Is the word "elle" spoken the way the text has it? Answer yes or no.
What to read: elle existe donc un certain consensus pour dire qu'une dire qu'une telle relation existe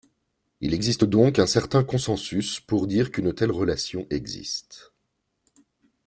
no